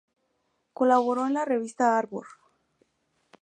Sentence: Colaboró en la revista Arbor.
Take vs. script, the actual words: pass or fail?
pass